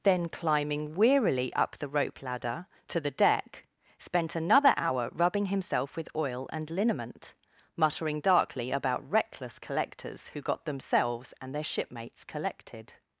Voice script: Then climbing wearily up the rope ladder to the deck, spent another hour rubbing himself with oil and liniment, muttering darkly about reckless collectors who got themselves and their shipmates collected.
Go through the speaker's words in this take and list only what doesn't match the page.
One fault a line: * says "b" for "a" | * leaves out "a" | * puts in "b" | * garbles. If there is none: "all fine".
all fine